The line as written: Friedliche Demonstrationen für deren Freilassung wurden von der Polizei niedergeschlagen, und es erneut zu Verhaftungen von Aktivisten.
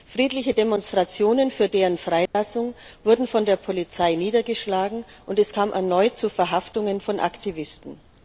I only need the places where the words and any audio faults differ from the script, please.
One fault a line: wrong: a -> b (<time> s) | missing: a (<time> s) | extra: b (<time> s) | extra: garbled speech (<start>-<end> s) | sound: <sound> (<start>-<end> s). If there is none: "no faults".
sound: dropout (2.3-2.3 s)
extra: kam (5.5 s)